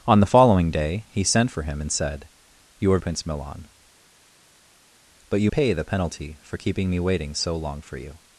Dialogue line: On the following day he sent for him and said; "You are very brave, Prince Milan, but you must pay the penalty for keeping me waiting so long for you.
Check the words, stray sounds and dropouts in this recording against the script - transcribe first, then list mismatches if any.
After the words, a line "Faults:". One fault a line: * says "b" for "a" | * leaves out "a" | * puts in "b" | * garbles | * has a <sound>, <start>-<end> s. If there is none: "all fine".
On the following day he sent for him and said; "You are Prince Milan, but you pay the penalty for keeping me waiting so long for you.
Faults:
* leaves out "very brave"
* leaves out "must"